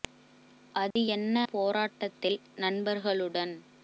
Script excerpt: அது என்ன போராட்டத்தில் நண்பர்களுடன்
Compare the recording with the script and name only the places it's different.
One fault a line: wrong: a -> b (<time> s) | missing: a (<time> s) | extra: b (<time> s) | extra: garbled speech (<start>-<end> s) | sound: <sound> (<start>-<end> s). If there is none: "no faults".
sound: dropout (0.9-1.0 s)